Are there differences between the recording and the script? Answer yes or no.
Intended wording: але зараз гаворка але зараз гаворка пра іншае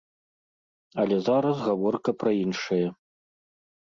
yes